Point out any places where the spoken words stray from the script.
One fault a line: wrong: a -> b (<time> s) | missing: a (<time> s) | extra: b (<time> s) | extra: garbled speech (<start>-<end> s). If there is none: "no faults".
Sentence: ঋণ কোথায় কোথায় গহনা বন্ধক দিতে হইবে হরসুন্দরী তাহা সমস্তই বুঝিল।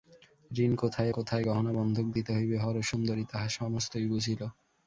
no faults